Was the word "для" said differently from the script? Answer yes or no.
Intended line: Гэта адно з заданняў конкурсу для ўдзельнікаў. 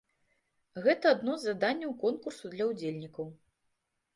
no